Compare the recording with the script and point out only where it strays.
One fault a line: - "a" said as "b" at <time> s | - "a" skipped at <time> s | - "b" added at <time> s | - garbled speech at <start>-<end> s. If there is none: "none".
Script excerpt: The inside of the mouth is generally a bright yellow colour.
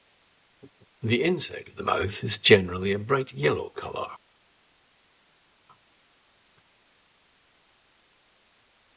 none